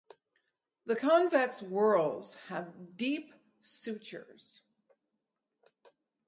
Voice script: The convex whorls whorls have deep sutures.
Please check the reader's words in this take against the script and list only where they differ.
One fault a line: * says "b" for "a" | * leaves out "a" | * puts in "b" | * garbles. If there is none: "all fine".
* leaves out "whorls"